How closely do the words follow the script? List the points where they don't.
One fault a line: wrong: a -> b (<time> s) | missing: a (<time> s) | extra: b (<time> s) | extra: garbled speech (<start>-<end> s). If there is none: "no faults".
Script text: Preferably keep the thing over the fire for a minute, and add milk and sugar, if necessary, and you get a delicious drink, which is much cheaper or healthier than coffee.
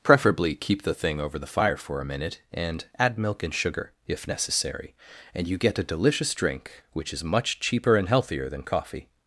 wrong: or -> and (8.0 s)